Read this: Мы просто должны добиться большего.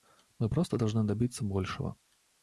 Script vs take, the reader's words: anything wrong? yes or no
no